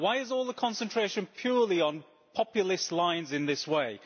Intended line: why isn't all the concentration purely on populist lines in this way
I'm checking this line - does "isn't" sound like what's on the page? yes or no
no